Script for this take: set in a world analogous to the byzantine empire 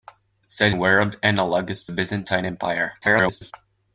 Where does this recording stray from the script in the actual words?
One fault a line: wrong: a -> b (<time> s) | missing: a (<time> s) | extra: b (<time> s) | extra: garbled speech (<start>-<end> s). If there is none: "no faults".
missing: in (0.8 s)
missing: the (1.9 s)
extra: garbled speech (3.0-3.5 s)